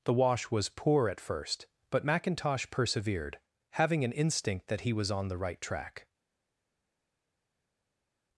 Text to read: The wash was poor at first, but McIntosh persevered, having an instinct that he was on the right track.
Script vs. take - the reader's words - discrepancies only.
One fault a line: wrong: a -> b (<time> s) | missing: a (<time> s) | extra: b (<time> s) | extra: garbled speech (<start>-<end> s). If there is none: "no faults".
no faults